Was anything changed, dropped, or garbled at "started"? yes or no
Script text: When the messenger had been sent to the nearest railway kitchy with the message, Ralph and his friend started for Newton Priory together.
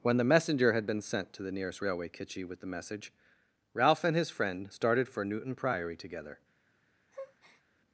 no